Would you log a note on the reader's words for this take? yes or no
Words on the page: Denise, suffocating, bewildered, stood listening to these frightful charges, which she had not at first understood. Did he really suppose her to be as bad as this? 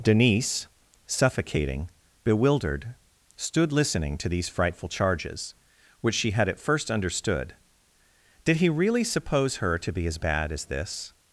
yes